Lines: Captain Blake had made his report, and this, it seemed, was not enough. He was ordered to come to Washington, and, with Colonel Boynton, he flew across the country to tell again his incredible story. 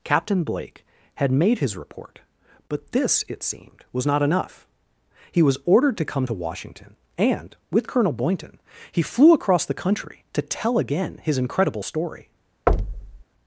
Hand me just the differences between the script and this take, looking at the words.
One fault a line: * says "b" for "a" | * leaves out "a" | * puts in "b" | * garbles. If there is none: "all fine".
* says "but" for "and"